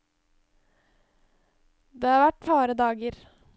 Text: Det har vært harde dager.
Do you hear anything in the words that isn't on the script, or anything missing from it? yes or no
no